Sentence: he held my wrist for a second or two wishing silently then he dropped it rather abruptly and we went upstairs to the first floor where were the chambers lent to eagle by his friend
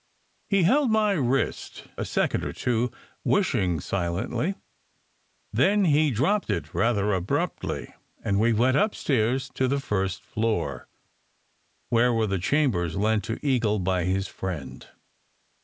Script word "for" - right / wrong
wrong